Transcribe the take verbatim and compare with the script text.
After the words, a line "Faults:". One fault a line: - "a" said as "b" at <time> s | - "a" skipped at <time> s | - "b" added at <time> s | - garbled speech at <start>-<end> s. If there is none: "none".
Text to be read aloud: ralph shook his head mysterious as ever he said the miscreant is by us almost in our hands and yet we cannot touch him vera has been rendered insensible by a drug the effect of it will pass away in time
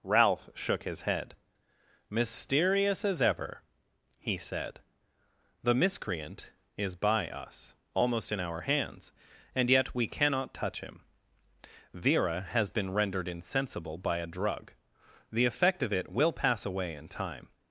ralph shook his head mysterious as ever he said the miscreant is by us almost in our hands and yet we cannot touch him vera has been rendered insensible by a drug the effect of it will pass away in time
Faults:
none